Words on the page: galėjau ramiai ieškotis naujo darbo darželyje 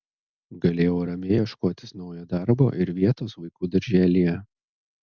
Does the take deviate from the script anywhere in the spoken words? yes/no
yes